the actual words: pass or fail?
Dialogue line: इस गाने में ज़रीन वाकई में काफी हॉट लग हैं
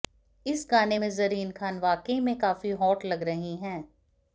fail